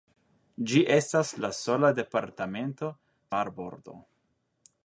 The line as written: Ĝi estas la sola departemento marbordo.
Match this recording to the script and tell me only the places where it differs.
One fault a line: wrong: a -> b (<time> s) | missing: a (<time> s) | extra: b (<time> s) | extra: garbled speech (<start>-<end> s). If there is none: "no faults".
no faults